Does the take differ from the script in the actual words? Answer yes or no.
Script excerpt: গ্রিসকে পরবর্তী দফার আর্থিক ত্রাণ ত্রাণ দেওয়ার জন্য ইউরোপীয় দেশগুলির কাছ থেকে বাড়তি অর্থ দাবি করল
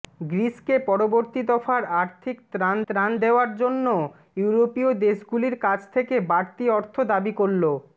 no